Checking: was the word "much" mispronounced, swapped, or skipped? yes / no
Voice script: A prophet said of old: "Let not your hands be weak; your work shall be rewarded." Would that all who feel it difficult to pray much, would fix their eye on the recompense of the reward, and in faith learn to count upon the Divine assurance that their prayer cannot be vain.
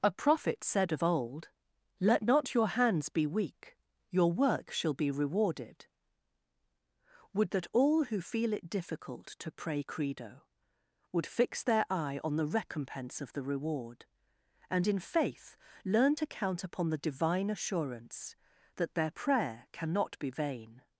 yes